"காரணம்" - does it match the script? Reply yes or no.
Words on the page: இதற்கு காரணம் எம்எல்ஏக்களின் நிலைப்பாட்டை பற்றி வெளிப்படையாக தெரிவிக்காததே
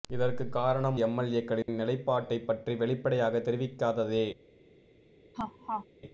yes